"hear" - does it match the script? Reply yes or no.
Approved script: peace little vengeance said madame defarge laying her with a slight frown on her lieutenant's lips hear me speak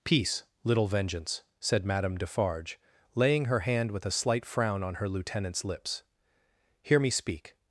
yes